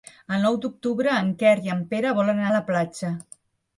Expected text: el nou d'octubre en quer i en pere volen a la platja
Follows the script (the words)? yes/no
yes